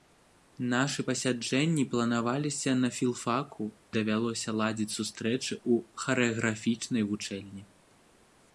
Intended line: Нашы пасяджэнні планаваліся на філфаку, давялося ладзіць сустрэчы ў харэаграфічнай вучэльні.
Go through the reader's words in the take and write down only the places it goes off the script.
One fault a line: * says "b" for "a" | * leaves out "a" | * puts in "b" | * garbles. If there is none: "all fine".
all fine